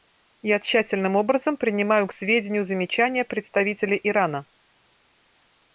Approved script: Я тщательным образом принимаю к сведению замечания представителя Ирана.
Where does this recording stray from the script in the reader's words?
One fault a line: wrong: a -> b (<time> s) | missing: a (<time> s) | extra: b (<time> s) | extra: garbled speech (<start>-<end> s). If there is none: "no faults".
no faults